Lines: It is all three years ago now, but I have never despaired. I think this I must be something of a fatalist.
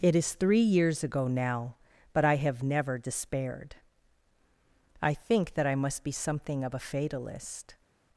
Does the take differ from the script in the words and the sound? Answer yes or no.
yes